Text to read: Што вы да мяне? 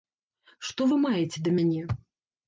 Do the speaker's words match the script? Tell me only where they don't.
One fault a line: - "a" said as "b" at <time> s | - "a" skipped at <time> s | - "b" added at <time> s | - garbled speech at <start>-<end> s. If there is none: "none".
- "маеце" added at 1.1 s